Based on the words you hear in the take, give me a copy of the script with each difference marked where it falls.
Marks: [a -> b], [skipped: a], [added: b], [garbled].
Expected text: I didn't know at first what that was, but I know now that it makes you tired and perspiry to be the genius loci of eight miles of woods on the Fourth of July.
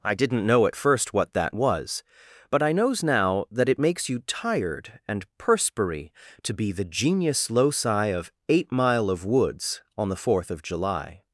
I didn't know at first what that was, but I [know -> knows] now that it makes you tired and perspiry to be the genius loci of eight [miles -> mile] of woods on the Fourth of July.